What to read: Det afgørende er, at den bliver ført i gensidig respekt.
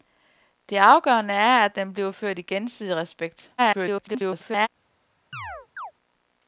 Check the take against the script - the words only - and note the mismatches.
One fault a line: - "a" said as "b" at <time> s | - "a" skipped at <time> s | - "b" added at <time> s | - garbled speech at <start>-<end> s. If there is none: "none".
- garbled speech at 3.6-4.7 s